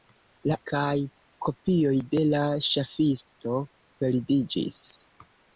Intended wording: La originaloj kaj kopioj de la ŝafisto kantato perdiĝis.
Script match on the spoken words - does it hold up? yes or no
no